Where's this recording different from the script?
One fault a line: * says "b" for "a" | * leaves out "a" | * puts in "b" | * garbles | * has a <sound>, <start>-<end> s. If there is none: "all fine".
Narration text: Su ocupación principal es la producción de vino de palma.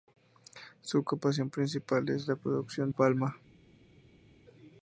* leaves out "de vino de"